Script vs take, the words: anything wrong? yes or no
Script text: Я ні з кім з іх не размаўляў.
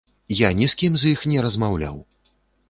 no